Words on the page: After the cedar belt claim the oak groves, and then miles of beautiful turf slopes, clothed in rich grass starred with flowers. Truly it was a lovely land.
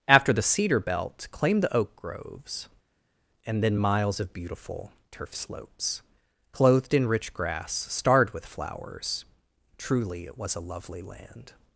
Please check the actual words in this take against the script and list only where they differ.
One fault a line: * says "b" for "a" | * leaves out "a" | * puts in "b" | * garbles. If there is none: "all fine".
all fine